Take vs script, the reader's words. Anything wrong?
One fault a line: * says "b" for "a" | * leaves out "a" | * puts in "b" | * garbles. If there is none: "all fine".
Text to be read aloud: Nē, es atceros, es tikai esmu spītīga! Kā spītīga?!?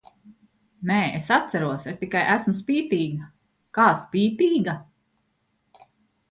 all fine